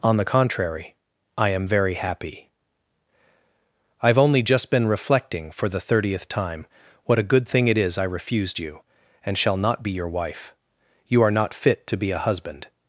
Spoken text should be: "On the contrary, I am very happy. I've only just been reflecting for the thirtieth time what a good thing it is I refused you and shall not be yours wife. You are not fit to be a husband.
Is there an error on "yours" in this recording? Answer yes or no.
yes